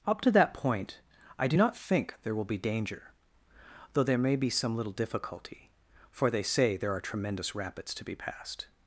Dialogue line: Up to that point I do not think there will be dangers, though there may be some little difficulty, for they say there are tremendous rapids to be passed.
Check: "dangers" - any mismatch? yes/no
yes